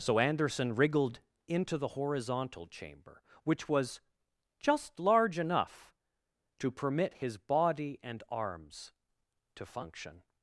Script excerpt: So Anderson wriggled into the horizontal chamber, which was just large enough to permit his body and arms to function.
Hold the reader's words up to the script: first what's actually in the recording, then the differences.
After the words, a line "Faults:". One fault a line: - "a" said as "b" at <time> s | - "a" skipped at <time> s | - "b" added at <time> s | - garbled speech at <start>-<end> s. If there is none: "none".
So Anderson wriggled into the horizontal chamber, which was just large enough to permit his body and arms to function.
Faults:
none